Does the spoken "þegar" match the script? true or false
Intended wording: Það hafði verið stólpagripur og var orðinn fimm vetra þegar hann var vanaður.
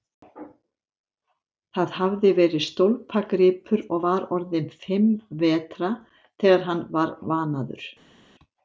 true